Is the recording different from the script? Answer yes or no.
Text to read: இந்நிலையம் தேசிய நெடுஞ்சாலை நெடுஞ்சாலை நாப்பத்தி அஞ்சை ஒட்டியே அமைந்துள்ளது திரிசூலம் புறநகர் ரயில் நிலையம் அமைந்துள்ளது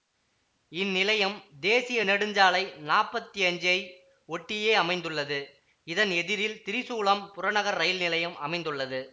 yes